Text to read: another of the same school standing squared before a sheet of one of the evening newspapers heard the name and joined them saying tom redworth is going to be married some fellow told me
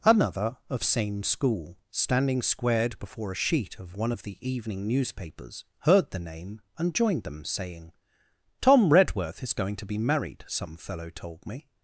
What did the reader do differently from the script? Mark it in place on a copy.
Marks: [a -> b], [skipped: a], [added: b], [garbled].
another of [skipped: the] same school standing squared before a sheet of one of the evening newspapers heard the name and joined them saying tom redworth is going to be married some fellow told me